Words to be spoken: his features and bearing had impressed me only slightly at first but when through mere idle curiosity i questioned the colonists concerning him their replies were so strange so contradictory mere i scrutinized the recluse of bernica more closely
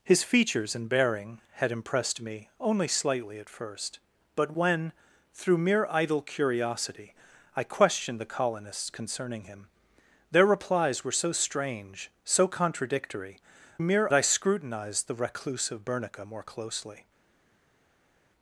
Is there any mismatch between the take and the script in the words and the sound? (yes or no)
no